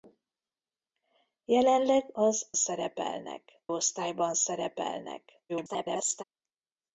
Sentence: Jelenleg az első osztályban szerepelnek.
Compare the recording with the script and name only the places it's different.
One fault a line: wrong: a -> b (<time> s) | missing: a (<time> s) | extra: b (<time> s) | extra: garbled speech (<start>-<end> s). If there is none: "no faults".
wrong: első -> szerepelnek (2.5 s)
extra: garbled speech (5.5-6.2 s)